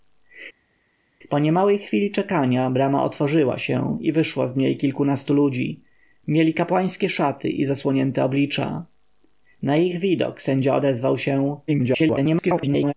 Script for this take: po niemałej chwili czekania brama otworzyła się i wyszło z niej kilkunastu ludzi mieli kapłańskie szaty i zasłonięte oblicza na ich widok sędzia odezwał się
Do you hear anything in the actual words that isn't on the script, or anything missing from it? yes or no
yes